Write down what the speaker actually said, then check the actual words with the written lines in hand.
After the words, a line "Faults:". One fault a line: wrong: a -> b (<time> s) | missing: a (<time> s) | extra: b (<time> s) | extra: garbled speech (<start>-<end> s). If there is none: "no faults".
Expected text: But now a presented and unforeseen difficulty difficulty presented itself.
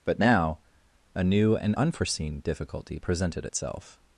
But now a new and unforeseen difficulty presented itself.
Faults:
wrong: presented -> new (1.2 s)
missing: difficulty (3.0 s)